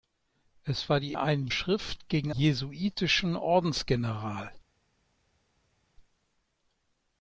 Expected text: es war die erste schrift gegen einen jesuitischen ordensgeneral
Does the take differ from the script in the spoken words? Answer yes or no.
yes